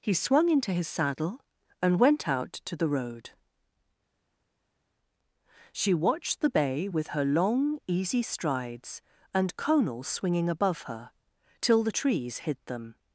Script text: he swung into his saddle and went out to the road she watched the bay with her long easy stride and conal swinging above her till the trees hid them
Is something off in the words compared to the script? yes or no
yes